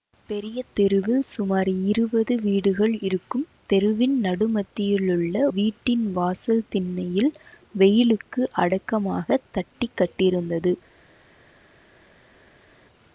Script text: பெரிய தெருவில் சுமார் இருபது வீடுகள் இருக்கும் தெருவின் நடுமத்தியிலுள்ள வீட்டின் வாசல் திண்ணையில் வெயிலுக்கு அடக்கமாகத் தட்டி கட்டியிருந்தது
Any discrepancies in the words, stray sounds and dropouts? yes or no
no